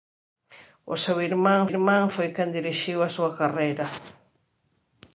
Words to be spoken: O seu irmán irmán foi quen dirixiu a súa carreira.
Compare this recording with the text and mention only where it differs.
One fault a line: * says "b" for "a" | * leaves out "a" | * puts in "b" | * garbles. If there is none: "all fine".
all fine